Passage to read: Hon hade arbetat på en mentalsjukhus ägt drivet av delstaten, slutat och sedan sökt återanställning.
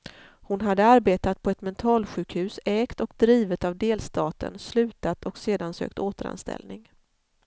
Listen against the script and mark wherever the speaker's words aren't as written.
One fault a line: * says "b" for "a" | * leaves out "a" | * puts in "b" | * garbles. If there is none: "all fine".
* says "ett" for "en"
* puts in "och"